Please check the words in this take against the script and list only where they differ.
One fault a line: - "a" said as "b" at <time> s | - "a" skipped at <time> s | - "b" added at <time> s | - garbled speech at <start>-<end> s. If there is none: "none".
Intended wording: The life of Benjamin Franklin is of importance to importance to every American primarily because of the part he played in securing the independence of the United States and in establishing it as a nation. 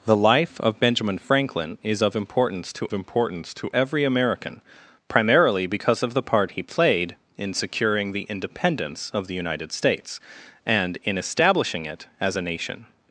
none